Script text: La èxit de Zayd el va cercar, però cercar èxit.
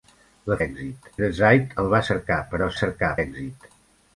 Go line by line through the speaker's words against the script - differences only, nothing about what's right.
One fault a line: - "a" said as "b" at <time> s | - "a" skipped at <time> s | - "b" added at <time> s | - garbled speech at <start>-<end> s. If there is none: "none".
none